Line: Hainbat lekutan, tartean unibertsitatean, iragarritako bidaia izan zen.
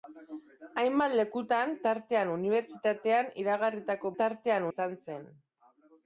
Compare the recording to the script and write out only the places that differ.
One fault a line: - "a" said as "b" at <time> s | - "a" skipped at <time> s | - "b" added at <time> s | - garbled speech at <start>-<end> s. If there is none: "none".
- "bidaia" said as "tartean" at 4.2 s